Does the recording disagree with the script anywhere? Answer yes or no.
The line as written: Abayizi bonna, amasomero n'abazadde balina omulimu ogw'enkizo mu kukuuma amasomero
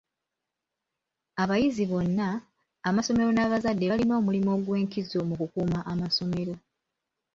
no